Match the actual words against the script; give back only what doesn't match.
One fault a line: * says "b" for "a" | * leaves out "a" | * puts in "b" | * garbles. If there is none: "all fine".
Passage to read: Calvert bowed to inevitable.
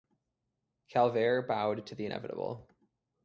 * puts in "the"